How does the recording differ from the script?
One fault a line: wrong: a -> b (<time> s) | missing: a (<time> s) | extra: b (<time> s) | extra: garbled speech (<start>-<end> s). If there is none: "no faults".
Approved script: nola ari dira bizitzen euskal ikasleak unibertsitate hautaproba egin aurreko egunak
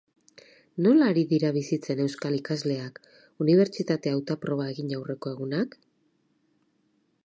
no faults